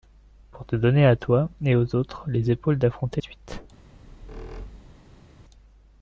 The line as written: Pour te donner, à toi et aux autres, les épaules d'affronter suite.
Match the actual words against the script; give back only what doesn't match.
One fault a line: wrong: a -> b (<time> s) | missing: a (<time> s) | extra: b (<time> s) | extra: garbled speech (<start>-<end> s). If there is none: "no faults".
no faults